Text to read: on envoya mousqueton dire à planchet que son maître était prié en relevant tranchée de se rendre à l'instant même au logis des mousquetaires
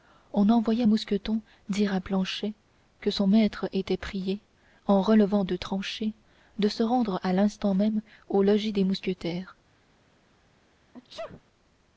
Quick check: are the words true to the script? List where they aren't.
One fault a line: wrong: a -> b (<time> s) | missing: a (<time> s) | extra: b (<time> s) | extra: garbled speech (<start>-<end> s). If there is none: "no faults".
extra: de (5.4 s)